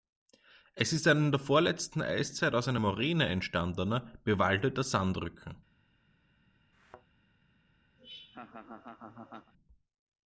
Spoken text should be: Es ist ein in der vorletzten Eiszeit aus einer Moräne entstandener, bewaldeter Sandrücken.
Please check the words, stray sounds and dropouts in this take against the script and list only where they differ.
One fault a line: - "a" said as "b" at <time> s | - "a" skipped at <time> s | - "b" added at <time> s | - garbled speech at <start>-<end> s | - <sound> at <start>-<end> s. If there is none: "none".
- thud at 6.7-7.1 s
- laugh at 8.0-9.5 s